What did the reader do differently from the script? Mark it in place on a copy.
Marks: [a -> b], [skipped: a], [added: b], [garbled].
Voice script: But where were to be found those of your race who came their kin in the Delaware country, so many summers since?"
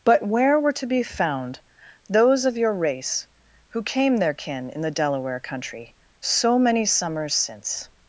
But where were to be found those of your race who came their kin in the Delaware country, so many summers since?"